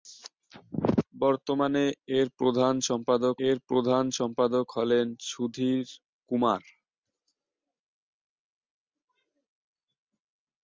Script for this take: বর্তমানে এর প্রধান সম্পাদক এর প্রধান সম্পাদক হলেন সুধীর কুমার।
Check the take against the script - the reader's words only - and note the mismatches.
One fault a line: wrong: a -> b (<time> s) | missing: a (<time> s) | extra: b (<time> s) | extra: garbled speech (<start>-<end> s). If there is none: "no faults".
no faults